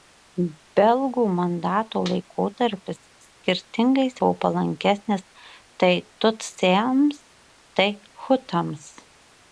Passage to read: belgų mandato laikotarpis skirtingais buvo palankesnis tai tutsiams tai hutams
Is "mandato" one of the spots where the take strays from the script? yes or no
no